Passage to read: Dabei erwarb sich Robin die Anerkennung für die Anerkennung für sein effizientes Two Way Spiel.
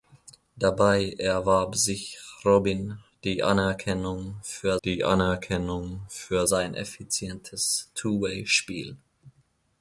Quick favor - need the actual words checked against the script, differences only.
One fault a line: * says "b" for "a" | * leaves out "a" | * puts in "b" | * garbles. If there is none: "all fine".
all fine